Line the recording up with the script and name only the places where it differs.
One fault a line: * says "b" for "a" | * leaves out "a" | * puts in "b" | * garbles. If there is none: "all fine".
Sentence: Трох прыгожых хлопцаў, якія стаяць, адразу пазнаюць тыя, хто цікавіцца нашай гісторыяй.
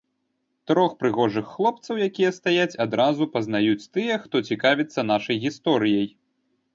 all fine